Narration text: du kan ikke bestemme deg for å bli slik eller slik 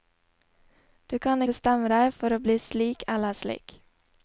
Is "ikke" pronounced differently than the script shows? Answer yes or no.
yes